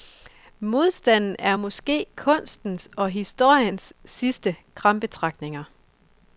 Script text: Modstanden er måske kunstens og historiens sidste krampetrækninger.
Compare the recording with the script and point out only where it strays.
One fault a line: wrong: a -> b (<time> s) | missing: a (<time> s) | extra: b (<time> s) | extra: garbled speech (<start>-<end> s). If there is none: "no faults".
no faults